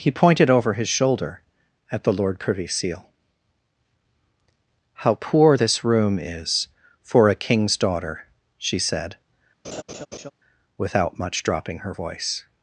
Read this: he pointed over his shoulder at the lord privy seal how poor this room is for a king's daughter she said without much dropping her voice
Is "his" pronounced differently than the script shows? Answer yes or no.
no